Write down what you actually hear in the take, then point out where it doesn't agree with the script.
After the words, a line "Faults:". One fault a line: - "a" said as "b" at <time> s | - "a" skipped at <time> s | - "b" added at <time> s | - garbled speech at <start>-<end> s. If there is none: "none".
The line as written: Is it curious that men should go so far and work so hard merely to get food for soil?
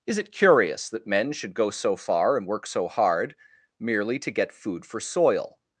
Is it curious that men should go so far and work so hard merely to get food for soil?
Faults:
none